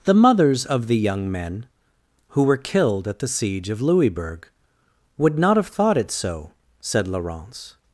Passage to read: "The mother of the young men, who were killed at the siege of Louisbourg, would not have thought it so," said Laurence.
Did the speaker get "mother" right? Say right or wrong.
wrong